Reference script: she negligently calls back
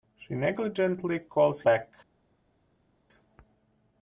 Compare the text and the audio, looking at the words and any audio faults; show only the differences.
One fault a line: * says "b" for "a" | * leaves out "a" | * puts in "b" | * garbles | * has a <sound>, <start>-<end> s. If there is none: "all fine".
all fine